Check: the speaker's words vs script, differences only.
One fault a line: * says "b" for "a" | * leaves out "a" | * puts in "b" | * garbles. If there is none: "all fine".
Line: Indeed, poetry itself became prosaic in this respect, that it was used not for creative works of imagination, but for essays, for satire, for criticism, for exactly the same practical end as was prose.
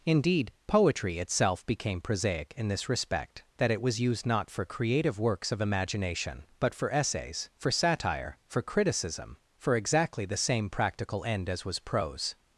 all fine